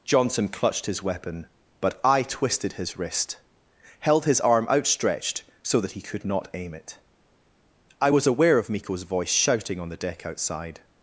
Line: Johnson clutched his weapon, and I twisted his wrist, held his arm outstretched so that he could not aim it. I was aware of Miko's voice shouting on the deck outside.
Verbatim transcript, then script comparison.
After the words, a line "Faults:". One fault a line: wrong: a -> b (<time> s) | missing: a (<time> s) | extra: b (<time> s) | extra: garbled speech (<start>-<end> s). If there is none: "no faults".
Johnson clutched his weapon, but I twisted his wrist, held his arm outstretched so that he could not aim it. I was aware of Miko's voice shouting on the deck outside.
Faults:
wrong: and -> but (1.8 s)